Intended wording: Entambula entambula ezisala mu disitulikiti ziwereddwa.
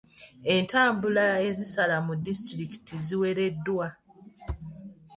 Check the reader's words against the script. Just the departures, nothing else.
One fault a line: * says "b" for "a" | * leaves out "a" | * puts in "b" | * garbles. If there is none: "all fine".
* leaves out "entambula"